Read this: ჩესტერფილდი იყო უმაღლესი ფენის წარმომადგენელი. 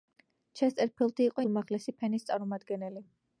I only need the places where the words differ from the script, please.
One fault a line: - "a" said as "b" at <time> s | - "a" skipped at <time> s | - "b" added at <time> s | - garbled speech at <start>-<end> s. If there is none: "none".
none